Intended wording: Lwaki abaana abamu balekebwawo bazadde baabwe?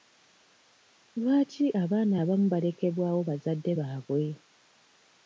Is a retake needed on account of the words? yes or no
no